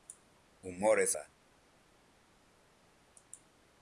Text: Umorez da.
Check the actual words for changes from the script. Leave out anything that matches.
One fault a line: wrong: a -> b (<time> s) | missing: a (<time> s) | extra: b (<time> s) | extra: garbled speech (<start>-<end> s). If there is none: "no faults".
no faults